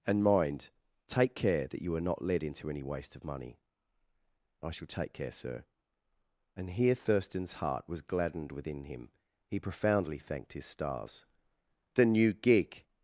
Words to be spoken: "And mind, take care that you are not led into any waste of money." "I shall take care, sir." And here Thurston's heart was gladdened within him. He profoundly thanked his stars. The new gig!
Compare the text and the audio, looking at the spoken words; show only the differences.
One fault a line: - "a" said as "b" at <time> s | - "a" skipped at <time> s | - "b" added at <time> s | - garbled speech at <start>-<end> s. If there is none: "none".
none